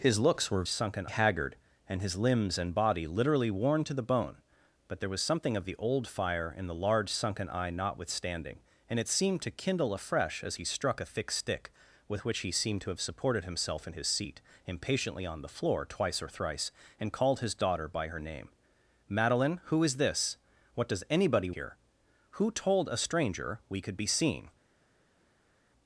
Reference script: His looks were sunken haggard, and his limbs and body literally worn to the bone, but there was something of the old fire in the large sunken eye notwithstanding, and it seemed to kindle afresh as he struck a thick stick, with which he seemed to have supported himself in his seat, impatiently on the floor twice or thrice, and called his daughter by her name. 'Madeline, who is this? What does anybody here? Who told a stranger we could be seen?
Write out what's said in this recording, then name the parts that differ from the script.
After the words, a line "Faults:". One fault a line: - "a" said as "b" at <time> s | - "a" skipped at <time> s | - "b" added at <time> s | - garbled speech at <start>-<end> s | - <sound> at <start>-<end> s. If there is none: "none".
His looks were sunken haggard, and his limbs and body literally worn to the bone, but there was something of the old fire in the large sunken eye notwithstanding, and it seemed to kindle afresh as he struck a thick stick, with which he seemed to have supported himself in his seat, impatiently on the floor twice or thrice, and called his daughter by her name. 'Madeline, who is this? What does anybody here? Who told a stranger we could be seen?
Faults:
none